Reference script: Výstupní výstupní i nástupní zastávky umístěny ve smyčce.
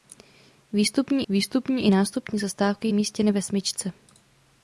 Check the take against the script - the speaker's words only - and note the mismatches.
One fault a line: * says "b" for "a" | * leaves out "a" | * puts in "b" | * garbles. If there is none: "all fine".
all fine